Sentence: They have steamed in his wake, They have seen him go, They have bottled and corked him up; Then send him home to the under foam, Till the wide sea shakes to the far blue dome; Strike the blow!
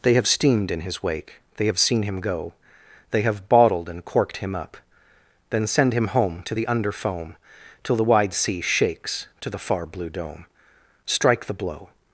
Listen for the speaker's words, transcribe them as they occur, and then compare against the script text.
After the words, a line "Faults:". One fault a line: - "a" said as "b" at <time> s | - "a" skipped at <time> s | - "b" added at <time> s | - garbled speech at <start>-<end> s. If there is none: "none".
They have steamed in his wake, They have seen him go, They have bottled and corked him up; Then send him home to the under foam, Till the wide sea shakes to the far blue dome; Strike the blow!
Faults:
none